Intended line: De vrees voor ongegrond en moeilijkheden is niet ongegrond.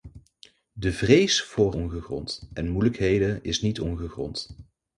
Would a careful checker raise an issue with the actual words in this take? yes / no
no